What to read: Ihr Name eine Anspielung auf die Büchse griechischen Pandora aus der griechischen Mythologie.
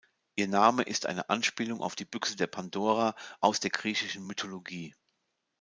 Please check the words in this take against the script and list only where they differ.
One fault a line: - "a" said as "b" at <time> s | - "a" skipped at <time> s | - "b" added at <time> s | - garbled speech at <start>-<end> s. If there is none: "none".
- "ist" added at 0.8 s
- "griechischen" said as "der" at 2.4 s